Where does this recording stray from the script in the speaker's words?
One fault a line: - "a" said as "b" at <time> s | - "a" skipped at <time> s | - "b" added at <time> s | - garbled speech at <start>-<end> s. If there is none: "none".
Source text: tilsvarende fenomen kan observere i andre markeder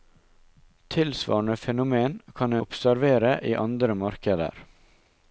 none